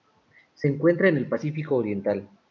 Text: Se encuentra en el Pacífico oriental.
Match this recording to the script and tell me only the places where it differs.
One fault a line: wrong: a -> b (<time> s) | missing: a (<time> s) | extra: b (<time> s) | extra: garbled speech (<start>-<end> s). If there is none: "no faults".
no faults